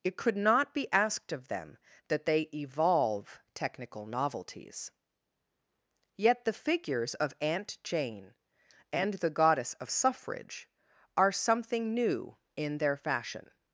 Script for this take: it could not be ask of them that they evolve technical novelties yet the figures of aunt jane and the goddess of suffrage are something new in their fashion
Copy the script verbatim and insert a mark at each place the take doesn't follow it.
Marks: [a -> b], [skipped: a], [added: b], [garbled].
it could not be [ask -> asked] of them that they evolve technical novelties yet the figures of aunt jane and the goddess of suffrage are something new in their fashion